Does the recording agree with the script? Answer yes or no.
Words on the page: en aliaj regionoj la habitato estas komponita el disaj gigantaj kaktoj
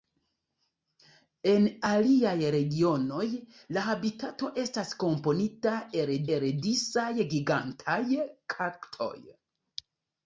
no